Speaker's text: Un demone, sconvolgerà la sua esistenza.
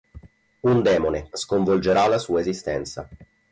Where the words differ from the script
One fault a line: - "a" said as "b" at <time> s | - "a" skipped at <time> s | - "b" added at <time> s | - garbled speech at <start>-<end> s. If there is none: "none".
none